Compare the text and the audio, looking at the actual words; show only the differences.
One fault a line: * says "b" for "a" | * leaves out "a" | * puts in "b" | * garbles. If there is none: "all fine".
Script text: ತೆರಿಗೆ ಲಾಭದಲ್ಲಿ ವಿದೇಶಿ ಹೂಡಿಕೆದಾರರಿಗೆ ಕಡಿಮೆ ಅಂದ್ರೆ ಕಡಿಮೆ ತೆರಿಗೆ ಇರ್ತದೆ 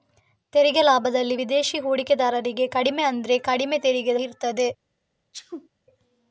all fine